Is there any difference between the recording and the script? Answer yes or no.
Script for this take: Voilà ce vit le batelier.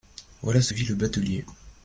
no